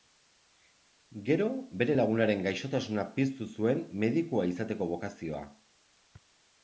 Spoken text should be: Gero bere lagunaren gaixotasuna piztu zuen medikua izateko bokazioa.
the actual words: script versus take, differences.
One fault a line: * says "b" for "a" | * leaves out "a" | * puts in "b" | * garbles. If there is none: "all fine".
all fine